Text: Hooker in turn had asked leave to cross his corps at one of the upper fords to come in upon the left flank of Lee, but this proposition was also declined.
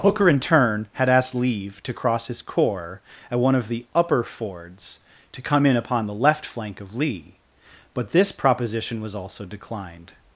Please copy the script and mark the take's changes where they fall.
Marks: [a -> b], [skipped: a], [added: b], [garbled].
Hooker in turn had asked leave to cross his corps at one of the upper fords to come in upon the left flank of Lee, but this proposition was also declined.